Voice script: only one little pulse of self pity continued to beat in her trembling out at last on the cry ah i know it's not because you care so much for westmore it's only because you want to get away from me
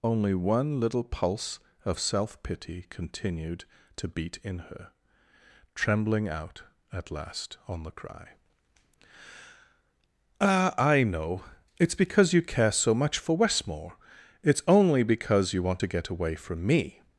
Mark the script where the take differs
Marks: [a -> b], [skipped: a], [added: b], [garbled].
only one little pulse of self pity continued to beat in her trembling out at last on the cry ah i know it's [skipped: not] because you care so much for westmore it's only because you want to get away from me